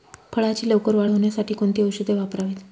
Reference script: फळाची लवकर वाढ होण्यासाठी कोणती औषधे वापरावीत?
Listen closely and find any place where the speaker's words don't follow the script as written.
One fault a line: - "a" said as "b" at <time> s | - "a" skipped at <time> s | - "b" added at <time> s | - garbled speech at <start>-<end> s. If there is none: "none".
none